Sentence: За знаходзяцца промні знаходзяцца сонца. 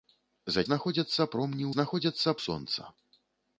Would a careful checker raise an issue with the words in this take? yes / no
no